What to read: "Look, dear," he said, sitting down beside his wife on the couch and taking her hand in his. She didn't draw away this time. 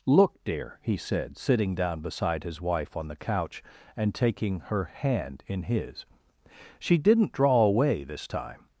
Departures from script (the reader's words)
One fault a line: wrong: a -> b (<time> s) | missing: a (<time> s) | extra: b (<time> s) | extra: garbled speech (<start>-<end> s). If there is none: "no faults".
no faults